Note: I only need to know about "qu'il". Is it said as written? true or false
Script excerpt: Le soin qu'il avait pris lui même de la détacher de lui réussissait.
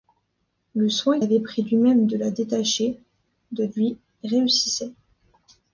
false